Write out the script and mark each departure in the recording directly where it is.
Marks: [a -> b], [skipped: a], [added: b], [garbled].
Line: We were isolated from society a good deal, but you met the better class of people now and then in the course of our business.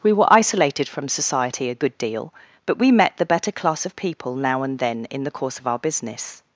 We were isolated from society a good deal, but [you -> we] met the better class of people now and then in the course of our business.